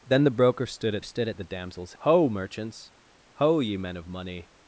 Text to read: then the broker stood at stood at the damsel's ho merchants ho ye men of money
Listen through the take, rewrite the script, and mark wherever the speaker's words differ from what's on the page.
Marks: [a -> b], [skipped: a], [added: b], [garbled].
then the broker stood at stood at the damsel's ho merchants ho ye men of money